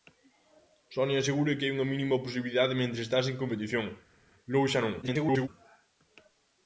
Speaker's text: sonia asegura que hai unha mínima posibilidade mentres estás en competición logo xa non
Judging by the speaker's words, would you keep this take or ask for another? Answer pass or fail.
fail